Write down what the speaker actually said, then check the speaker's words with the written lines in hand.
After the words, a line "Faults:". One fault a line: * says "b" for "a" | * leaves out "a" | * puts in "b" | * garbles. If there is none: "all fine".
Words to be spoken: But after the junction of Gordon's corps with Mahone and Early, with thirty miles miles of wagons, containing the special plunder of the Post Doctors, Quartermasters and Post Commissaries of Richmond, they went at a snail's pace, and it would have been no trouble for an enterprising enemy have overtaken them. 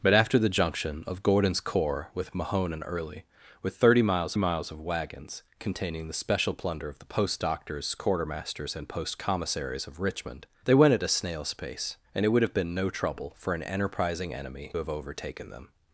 But after the junction of Gordon's corps with Mahone and Early, with thirty miles miles of wagons, containing the special plunder of the Post Doctors, Quartermasters and Post Commissaries of Richmond, they went at a snail's pace, and it would have been no trouble for an enterprising enemy have overtaken them.
Faults:
all fine